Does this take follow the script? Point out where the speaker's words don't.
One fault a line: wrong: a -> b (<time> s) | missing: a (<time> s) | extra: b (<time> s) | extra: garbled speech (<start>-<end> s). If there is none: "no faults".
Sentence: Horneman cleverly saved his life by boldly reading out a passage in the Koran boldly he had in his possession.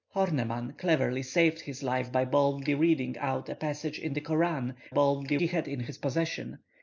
no faults